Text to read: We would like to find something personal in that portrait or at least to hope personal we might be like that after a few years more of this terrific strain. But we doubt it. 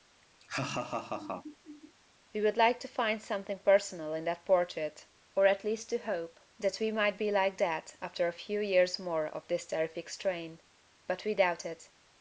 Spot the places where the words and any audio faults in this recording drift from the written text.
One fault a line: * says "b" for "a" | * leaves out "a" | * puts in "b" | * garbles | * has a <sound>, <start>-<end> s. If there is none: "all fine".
* has a laugh, 0.4-1.9 s
* says "that" for "personal"